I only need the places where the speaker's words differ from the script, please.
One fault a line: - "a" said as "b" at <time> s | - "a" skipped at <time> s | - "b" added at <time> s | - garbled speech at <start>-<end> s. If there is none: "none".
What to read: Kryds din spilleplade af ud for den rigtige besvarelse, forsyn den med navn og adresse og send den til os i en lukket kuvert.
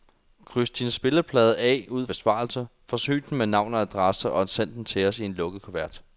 - "for den rigtige" skipped at 2.1 s